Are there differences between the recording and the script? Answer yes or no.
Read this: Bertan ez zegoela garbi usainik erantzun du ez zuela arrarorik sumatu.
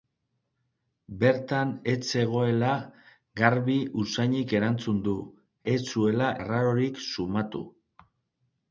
no